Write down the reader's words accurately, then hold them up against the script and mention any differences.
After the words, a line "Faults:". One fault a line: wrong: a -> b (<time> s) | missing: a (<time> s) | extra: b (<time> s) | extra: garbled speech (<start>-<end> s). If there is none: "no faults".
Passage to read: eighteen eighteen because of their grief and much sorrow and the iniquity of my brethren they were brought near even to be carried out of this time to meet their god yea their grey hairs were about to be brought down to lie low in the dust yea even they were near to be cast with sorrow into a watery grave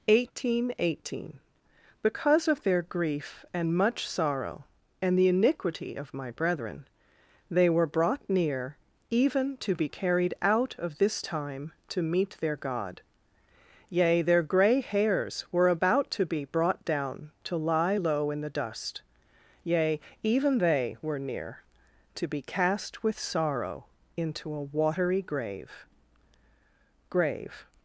eighteen eighteen because of their grief and much sorrow and the iniquity of my brethren they were brought near even to be carried out of this time to meet their god yea their grey hairs were about to be brought down to lie low in the dust yea even they were near to be cast with sorrow into a watery grave grave
Faults:
extra: grave (27.1 s)